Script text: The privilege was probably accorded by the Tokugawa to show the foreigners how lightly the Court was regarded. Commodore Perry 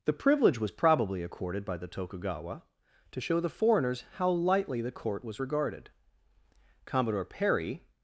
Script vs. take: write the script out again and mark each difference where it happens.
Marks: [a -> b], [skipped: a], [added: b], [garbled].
The privilege was probably accorded by the Tokugawa to show the foreigners how lightly the Court was regarded. Commodore Perry